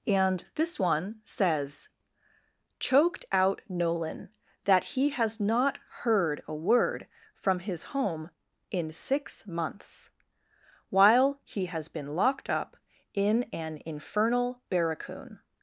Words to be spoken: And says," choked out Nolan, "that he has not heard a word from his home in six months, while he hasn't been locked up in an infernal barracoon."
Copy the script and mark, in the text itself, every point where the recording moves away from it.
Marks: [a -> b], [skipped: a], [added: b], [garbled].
And [added: this one] says," choked out Nolan, "that he has not heard a word from his home in six months, while he [hasn't -> has] been locked up in an infernal barracoon."